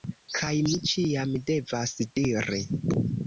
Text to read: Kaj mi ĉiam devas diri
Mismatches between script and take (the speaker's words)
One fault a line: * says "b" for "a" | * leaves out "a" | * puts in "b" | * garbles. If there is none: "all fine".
all fine